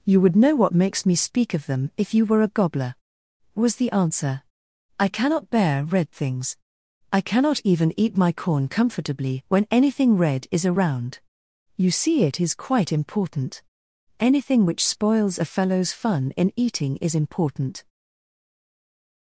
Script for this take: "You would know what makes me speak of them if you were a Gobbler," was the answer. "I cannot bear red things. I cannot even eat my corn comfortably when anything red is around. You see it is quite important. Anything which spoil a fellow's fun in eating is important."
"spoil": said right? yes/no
no